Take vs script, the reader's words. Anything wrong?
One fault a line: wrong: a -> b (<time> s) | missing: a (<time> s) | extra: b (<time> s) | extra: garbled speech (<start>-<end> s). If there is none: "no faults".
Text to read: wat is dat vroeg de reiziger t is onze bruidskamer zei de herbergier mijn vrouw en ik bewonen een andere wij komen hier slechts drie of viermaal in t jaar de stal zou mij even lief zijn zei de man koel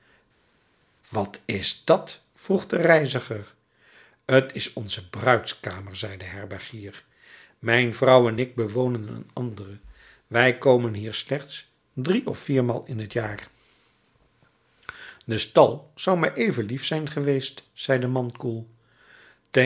extra: geweest (17.1 s)